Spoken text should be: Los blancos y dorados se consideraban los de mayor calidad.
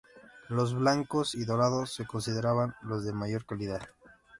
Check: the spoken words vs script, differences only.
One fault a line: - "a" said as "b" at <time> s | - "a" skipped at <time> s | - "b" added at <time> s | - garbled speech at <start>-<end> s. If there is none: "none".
none